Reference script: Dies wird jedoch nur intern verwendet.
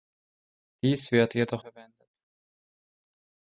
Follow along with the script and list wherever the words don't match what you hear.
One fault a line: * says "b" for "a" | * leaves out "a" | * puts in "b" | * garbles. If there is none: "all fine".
* leaves out "nur intern"